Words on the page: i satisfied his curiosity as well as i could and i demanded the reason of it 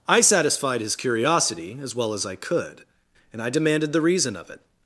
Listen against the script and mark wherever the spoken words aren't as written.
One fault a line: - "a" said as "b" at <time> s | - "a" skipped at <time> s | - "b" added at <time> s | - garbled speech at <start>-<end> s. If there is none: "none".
none